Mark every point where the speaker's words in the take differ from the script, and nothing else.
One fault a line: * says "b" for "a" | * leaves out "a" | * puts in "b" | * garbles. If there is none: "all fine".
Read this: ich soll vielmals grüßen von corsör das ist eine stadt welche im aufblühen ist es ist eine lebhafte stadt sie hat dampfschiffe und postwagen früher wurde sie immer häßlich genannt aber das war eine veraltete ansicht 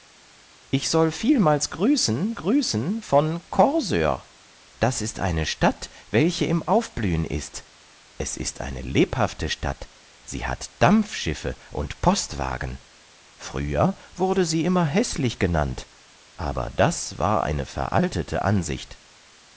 * puts in "grüßen"